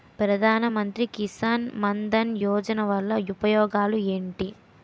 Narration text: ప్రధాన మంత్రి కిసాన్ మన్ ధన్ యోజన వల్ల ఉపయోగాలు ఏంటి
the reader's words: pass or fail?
pass